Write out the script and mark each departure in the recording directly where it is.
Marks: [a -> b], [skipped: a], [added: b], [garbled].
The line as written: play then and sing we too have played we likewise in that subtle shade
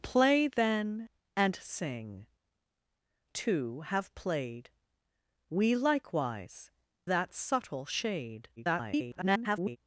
play then and sing [skipped: we] too have played we likewise [skipped: in] that subtle shade [garbled]